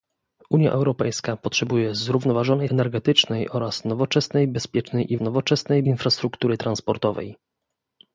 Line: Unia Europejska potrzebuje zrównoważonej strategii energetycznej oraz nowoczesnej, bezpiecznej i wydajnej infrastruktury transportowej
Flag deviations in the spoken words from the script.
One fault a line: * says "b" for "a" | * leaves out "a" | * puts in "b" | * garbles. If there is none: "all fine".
* leaves out "strategii"
* says "nowoczesnej" for "wydajnej"